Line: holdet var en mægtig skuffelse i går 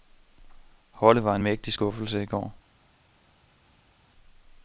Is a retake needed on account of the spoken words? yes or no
no